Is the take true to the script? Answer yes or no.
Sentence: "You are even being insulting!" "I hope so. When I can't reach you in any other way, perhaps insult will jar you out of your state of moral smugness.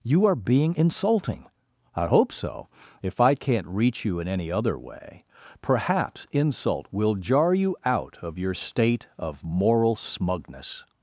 no